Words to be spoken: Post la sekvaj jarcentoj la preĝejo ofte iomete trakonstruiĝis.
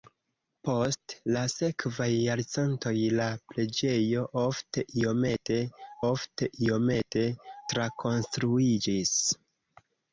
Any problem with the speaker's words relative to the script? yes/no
yes